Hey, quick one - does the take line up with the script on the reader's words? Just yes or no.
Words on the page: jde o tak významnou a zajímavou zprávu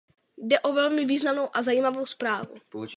no